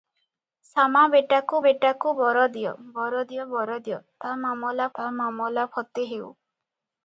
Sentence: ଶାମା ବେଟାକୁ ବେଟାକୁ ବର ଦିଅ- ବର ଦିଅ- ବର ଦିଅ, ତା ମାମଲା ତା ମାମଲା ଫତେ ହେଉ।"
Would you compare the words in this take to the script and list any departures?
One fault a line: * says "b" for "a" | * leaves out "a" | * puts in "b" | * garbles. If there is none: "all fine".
all fine